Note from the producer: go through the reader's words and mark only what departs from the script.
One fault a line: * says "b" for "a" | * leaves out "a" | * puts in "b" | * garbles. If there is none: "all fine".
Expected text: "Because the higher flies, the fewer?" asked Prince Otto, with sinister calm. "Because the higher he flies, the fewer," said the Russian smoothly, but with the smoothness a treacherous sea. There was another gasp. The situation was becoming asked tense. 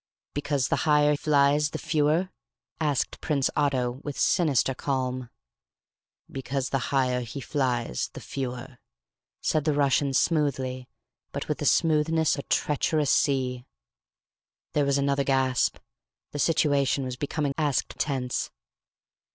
all fine